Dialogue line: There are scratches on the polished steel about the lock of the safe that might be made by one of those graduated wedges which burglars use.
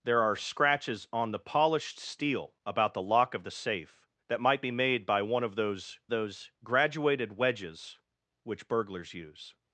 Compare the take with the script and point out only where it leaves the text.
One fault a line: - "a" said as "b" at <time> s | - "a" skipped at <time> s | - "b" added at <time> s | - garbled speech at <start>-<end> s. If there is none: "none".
- "those" added at 6.1 s